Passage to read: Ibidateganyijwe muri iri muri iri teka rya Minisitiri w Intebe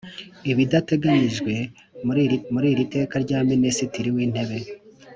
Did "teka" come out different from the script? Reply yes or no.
no